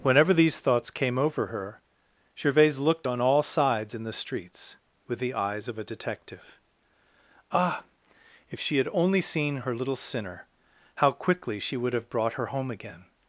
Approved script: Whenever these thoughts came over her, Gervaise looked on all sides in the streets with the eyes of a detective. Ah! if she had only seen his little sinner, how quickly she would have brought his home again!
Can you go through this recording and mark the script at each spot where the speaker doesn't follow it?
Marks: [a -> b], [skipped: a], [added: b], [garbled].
Whenever these thoughts came over her, Gervaise looked on all sides in the streets with the eyes of a detective. Ah! if she had only seen [his -> her] little sinner, how quickly she would have brought [his -> her] home again!